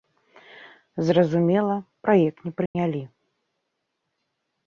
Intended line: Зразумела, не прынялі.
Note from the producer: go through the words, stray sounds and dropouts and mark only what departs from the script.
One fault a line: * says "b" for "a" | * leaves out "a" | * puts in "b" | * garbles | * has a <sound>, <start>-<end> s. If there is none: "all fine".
* puts in "праект"
* has a dropout, 2.7-2.8 s